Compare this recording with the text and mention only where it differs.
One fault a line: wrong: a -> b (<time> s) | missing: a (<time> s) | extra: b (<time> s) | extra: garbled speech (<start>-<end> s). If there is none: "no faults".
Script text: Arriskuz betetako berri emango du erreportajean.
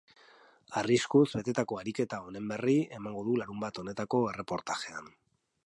extra: ariketa honen (1.8 s)
extra: larunbat honetako (3.4 s)